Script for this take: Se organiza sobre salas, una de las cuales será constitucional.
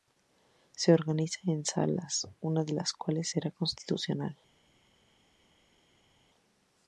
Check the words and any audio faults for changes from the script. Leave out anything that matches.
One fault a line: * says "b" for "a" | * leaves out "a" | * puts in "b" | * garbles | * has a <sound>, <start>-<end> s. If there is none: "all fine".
* says "en" for "sobre"